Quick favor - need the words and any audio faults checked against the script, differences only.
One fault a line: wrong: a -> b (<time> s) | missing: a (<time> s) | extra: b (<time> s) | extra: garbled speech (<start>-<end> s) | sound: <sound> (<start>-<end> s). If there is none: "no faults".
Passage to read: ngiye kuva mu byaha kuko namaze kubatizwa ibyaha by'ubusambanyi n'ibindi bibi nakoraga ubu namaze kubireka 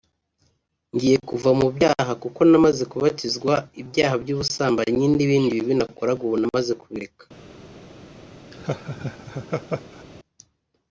sound: laugh (8.5-10.0 s)